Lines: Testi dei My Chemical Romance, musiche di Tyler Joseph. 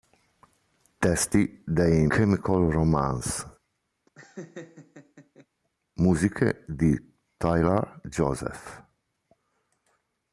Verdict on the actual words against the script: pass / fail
fail